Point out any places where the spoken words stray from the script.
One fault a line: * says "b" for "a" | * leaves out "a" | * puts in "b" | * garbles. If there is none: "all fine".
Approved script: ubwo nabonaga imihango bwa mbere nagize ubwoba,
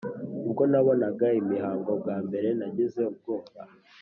all fine